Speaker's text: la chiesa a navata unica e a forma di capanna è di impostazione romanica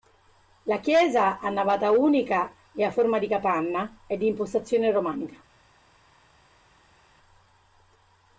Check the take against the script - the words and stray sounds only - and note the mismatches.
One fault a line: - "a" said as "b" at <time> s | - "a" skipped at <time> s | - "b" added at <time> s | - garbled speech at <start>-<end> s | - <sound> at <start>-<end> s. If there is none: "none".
none